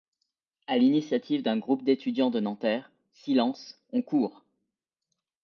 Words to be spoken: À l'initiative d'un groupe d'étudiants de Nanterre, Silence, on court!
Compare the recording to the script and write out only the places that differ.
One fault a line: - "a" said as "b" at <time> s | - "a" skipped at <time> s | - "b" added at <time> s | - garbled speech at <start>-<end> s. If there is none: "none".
none